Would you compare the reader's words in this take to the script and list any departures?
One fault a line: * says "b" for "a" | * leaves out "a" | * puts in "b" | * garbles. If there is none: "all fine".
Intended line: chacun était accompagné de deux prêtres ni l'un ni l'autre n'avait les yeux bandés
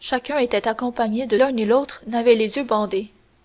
* leaves out "deux prêtres ni"